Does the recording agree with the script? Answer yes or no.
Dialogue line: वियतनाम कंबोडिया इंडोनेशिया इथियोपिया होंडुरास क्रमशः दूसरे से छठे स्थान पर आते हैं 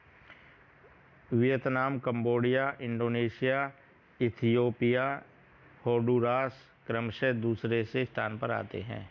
no